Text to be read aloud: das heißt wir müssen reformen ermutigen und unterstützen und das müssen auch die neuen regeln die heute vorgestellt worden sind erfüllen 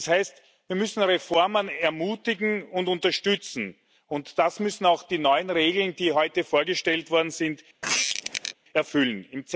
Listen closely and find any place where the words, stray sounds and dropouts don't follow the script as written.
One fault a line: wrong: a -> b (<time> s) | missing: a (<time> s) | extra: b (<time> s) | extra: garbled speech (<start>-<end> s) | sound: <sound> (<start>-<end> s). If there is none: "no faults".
sound: squeak (7.8-8.5 s)